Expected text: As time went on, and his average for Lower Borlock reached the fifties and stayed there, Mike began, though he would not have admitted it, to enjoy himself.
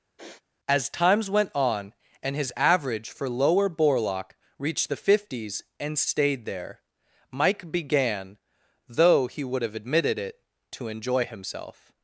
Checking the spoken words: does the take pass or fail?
fail